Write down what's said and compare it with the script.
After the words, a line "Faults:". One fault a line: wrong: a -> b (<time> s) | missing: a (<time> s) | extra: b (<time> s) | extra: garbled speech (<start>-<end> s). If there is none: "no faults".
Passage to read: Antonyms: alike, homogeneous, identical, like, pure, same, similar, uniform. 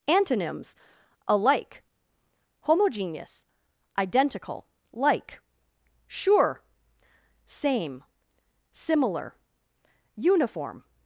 Antonyms: alike, homogeneous, identical, like, sure, same, similar, uniform.
Faults:
wrong: pure -> sure (6.1 s)